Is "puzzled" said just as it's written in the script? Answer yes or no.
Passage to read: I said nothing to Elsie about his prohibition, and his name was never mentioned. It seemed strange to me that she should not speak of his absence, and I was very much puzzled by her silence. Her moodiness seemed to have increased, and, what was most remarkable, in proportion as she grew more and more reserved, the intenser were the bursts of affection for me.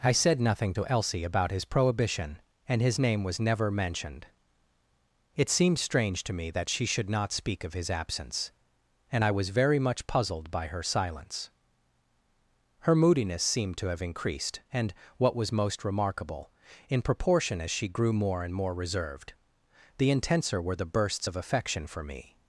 yes